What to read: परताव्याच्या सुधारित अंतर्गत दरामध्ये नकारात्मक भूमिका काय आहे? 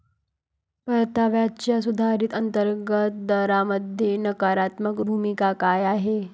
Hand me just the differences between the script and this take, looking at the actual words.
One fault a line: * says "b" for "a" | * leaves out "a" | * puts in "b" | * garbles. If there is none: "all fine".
all fine